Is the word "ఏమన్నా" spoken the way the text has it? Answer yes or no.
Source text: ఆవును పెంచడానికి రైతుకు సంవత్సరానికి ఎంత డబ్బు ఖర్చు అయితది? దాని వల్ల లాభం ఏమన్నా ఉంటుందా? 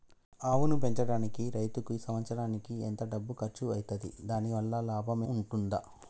no